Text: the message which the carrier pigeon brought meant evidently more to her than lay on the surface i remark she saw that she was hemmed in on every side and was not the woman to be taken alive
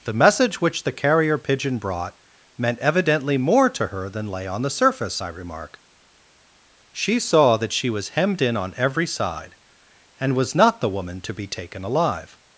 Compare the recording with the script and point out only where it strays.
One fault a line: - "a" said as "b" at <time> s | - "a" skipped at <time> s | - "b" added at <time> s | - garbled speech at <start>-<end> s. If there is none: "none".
none